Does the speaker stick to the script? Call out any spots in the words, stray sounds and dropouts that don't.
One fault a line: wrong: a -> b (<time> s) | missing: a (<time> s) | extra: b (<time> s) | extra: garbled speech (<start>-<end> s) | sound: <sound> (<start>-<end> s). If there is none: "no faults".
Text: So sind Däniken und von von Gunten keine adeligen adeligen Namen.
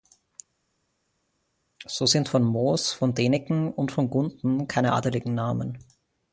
extra: von Moos von (2.3 s)
missing: von (4.1 s)
missing: adeligen (5.3 s)